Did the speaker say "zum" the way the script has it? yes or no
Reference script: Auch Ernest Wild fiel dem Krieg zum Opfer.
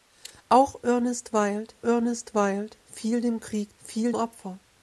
no